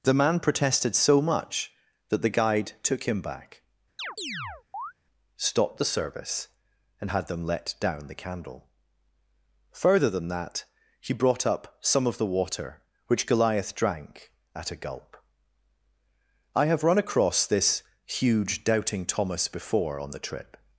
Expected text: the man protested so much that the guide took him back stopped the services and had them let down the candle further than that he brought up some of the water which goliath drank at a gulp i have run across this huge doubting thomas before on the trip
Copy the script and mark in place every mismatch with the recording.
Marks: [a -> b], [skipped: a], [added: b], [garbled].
the man protested so much that the guide took him back stopped the [services -> service] and had them let down the candle further than that he brought up some of the water which goliath drank at a gulp i have run across this huge doubting thomas before on the trip